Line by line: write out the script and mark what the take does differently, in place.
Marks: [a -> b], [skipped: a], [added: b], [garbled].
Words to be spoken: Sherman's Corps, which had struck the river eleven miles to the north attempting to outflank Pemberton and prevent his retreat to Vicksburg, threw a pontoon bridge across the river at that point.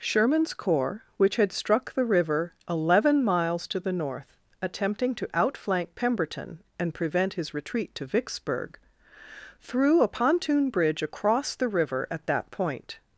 Sherman's Corps, which had struck the river eleven miles to the north attempting to outflank Pemberton and prevent his retreat to Vicksburg, threw a pontoon bridge across the river at that point.